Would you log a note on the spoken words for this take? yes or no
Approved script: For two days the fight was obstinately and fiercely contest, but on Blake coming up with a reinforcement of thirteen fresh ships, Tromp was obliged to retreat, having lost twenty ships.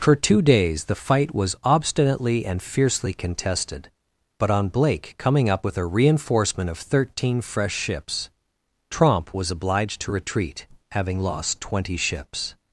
yes